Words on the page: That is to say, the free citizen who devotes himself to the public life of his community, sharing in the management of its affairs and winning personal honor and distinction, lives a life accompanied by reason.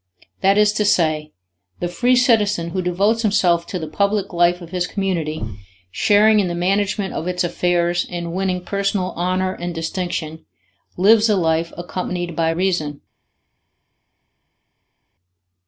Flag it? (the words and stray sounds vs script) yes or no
no